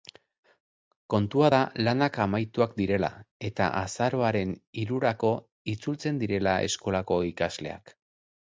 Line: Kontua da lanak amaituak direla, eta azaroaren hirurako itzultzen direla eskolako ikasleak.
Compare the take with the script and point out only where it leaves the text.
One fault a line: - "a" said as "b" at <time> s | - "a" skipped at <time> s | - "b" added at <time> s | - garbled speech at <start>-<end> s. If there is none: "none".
none